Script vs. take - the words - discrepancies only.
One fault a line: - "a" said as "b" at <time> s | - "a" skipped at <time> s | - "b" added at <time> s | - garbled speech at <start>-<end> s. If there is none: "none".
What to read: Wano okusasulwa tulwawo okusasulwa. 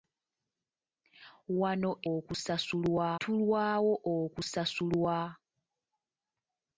none